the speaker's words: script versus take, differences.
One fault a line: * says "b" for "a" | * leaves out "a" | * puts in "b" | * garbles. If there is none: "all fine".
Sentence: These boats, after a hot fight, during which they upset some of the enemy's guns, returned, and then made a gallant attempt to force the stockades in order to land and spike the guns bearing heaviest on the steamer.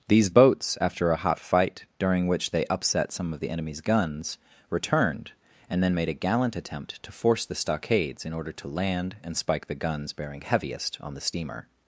all fine